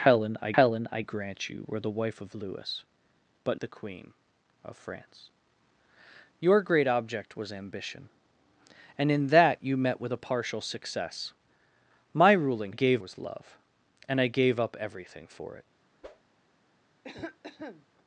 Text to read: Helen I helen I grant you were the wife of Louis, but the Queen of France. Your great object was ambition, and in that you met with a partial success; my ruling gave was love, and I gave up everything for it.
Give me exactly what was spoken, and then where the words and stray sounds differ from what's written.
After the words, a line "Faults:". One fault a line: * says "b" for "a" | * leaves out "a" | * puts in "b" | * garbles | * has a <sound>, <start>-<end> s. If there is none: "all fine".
Helen I helen I grant you were the wife of Louis, but the Queen of France. Your great object was ambition, and in that you met with a partial success; my ruling gave was love, and I gave up everything for it.
Faults:
* has a whoosh, 16.0-16.3 s
* has a cough, 17.0-17.9 s